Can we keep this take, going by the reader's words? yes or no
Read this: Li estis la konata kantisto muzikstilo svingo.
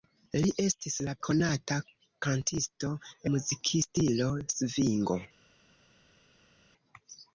yes